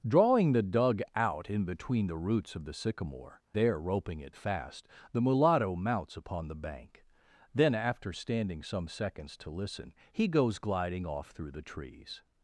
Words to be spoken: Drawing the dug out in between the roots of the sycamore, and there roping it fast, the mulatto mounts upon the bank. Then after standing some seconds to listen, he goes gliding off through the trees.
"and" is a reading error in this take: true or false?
true